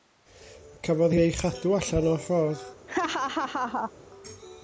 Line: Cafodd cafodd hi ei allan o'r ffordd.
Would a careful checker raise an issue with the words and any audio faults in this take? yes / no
yes